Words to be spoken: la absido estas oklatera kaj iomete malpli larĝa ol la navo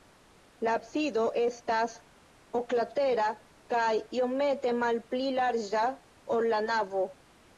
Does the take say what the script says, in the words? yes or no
yes